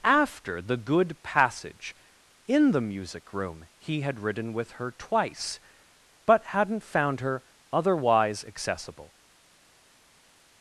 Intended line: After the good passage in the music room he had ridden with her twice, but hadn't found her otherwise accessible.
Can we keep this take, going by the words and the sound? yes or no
yes